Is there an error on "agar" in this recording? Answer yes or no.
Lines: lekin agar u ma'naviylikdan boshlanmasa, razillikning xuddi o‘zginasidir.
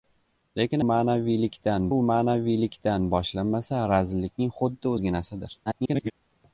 yes